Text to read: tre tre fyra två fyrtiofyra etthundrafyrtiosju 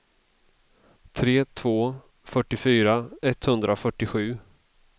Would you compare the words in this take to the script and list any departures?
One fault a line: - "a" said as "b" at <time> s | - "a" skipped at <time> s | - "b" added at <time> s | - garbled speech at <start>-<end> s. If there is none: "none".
- "tre fyra" skipped at 1.4 s